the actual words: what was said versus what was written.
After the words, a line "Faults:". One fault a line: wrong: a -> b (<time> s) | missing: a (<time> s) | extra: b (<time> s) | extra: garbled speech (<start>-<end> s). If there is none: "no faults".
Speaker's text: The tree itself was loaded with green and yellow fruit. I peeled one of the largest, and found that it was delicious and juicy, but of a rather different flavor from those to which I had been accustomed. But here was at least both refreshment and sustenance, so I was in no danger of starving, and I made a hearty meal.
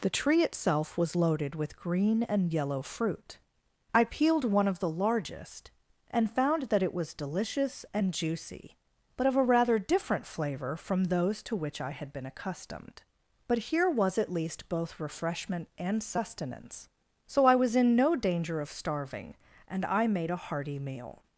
The tree itself was loaded with green and yellow fruit. I peeled one of the largest, and found that it was delicious and juicy, but of a rather different flavor from those to which I had been accustomed. But here was at least both refreshment and sustenance, so I was in no danger of starving, and I made a hearty meal.
Faults:
no faults